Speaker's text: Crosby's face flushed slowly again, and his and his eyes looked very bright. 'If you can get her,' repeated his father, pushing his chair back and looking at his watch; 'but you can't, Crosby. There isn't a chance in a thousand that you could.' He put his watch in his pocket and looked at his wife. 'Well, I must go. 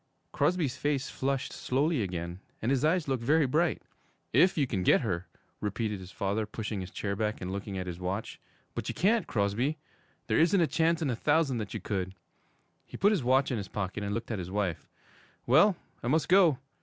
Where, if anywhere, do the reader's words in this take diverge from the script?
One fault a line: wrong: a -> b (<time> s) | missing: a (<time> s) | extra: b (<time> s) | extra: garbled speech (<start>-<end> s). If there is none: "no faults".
missing: and his (2.8 s)